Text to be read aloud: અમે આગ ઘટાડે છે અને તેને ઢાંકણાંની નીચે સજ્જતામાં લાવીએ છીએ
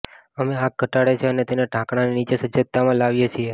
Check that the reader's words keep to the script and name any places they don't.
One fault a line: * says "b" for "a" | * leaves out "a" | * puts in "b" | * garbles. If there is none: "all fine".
all fine